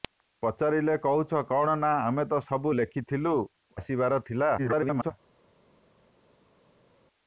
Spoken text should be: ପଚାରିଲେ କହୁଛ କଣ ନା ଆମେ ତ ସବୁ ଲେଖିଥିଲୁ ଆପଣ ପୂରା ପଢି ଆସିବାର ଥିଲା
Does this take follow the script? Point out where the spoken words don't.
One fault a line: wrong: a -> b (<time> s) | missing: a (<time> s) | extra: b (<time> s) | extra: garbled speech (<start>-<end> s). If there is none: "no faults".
missing: ଆପଣ ପୂରା ପଢି (3.3 s)
extra: garbled speech (4.6-5.1 s)